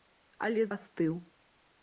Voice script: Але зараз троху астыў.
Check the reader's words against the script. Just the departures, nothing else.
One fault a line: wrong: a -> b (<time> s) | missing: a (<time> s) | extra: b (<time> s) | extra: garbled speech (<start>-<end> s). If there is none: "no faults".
missing: зараз троху (0.6 s)